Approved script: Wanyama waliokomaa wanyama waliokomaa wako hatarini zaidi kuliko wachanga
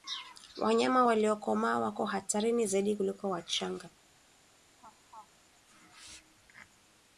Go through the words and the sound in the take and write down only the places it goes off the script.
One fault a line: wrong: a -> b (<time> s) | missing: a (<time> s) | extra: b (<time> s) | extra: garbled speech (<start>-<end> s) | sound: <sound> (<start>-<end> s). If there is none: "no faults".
missing: wanyama waliokomaa (1.8 s)
sound: laugh (4.8-5.3 s)